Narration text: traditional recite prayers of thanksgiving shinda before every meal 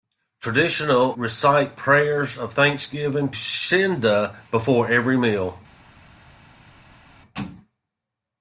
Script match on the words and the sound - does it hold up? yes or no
yes